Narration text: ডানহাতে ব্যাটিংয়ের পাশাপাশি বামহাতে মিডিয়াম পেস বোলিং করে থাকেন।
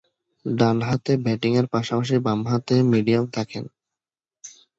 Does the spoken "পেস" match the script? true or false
false